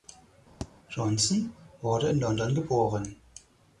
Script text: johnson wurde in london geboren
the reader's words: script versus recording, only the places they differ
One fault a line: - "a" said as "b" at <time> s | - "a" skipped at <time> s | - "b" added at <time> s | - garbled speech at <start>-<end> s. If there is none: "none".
none